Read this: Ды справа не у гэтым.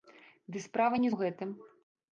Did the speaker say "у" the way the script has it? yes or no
yes